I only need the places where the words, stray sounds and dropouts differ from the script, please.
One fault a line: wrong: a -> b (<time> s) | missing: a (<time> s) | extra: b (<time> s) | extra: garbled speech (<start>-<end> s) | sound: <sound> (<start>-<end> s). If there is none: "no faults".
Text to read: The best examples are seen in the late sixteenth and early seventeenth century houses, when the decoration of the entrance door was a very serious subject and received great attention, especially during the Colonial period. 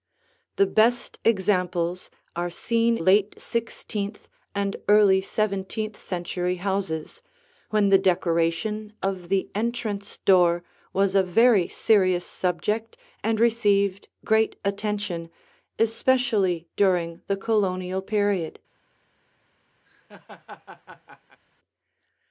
missing: in the (3.0 s)
sound: laugh (19.9-21.4 s)